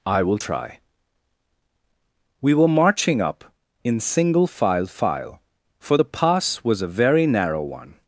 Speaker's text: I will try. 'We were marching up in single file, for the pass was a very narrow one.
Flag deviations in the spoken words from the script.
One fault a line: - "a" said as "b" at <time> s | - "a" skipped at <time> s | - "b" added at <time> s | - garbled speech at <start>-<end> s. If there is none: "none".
- "file" added at 4.9 s